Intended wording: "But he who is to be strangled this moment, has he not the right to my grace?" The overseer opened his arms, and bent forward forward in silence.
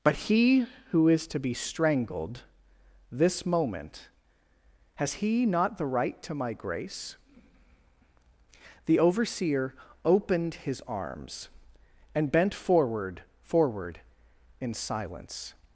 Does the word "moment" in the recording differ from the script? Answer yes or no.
no